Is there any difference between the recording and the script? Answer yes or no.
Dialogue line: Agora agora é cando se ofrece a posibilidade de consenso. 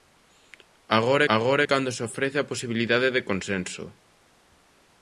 no